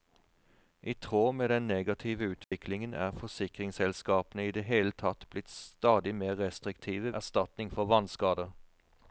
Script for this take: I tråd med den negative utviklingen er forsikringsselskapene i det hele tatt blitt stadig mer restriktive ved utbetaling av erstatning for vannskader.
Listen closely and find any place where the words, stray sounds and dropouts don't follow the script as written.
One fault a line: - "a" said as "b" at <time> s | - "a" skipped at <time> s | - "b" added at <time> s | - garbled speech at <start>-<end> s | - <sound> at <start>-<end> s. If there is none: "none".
- dropout at 2.4-2.5 s
- "ved utbetaling av" skipped at 7.1 s